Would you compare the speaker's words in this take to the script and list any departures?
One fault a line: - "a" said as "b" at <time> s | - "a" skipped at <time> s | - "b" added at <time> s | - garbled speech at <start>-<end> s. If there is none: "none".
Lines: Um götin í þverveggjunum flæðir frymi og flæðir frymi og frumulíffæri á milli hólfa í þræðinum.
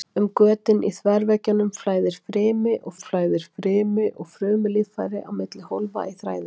none